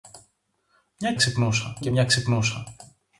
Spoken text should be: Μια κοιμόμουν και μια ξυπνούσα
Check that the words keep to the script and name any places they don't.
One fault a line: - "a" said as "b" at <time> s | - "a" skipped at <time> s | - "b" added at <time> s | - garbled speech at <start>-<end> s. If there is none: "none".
- "κοιμόμουν" said as "ξυπνούσα" at 1.1 s